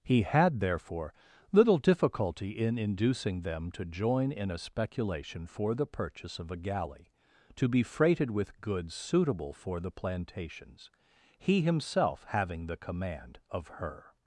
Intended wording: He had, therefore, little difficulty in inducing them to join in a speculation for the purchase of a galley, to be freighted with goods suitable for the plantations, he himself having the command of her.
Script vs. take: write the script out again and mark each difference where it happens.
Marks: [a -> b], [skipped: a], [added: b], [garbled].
He had, therefore, little difficulty in inducing them to join in a speculation for the purchase of a galley, to be freighted with goods suitable for the plantations, he himself having the command of her.